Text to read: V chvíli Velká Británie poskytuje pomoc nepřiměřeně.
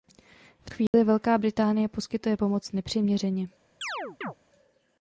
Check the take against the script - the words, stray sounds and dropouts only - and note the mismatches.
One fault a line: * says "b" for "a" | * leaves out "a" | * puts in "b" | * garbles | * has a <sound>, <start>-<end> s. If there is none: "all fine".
* has a dropout, 0.9-0.9 s
* has a chirp, 3.8-4.3 s